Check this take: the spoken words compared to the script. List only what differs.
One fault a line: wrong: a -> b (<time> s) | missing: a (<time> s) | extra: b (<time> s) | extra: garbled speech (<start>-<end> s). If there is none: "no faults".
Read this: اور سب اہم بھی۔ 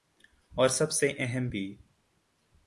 extra: سے (0.9 s)